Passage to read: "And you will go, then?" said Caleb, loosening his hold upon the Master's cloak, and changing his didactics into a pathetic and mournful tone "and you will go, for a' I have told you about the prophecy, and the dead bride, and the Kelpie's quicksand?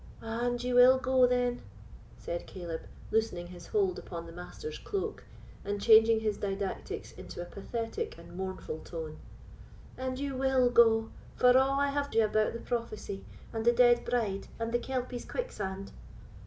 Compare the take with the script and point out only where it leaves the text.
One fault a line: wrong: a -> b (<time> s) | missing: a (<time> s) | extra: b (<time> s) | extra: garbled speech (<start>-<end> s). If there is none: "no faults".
missing: told (12.2 s)